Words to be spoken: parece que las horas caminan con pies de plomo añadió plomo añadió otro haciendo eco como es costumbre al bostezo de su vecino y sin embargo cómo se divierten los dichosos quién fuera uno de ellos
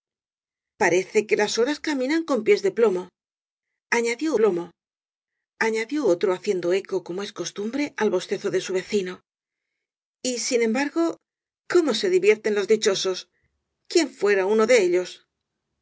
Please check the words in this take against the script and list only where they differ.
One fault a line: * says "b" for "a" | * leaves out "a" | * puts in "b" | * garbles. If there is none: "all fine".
all fine